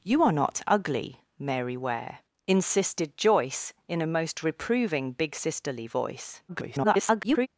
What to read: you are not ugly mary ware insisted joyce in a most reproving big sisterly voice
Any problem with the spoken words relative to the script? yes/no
yes